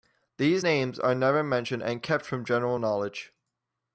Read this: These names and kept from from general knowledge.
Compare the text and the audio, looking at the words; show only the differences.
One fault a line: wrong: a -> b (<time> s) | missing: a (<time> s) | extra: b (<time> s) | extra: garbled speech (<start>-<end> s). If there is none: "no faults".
extra: are never mentioned (1.0 s)
missing: from (2.4 s)